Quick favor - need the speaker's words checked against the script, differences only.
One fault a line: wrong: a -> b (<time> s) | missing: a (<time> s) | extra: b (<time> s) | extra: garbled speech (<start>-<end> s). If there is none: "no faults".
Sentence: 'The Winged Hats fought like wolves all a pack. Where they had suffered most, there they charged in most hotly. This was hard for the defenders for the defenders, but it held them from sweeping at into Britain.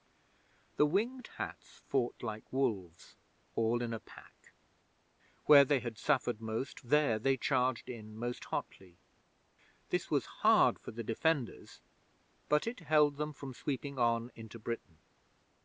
extra: in (3.8 s)
missing: for the defenders (11.8 s)
wrong: at -> on (14.0 s)